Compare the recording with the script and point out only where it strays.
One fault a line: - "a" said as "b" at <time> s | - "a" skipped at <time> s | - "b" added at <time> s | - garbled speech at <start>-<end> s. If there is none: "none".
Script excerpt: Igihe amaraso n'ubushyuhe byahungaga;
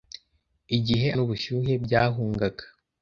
- "amaraso" skipped at 1.1 s